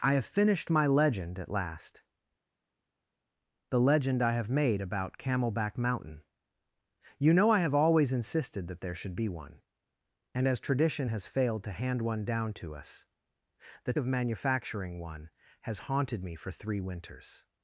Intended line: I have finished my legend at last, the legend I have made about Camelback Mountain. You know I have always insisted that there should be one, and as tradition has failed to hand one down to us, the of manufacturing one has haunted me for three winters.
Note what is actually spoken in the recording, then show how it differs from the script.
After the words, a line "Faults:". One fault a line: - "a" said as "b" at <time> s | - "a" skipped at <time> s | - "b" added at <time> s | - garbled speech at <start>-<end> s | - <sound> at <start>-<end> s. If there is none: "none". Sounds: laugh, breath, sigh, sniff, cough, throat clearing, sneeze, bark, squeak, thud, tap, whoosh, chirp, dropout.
I have finished my legend at last, the legend I have made about Camelback Mountain. You know I have always insisted that there should be one, and as tradition has failed to hand one down to us, the of manufacturing one has haunted me for three winters.
Faults:
none